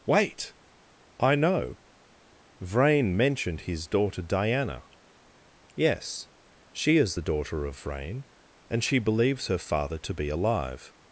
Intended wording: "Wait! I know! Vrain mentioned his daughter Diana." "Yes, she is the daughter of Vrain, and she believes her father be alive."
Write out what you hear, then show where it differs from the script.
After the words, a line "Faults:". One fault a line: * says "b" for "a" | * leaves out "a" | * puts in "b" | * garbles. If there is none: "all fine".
"Wait! I know! Vrain mentioned his daughter Diana." "Yes, she is the daughter of Vrain, and she believes her father to be alive."
Faults:
* puts in "to"